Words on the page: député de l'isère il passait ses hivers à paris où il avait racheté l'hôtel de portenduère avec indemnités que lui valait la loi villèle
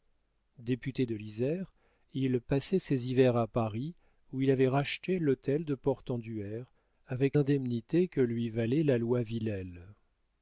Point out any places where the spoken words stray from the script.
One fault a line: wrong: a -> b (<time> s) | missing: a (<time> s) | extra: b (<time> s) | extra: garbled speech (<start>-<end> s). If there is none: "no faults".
no faults